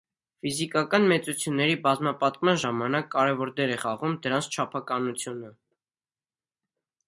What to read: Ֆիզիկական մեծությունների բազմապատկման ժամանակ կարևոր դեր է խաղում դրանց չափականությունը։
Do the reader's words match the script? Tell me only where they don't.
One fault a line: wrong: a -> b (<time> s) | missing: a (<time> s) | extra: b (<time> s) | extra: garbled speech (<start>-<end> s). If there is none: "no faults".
no faults